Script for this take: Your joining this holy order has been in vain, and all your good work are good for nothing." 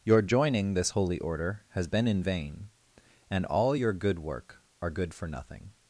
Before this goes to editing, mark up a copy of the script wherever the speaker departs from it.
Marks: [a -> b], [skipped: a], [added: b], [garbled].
Your joining this holy order has been in vain, and all your good work are good for nothing."